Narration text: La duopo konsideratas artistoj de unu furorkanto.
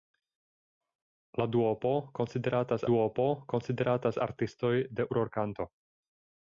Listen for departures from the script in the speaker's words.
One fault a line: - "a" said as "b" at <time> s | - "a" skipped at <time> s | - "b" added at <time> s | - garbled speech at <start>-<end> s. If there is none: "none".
- "duopo konsideratas" added at 2.9 s
- "unu" skipped at 5.1 s